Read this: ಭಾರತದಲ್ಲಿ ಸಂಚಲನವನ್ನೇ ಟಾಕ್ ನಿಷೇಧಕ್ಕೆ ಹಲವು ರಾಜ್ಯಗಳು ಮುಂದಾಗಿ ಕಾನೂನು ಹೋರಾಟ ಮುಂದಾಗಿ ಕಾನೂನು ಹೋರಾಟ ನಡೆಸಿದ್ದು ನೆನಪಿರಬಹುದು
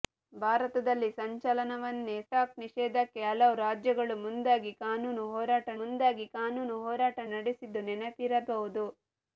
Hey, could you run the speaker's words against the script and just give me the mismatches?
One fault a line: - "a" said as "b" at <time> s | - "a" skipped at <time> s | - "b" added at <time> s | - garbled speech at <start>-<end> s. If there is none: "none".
none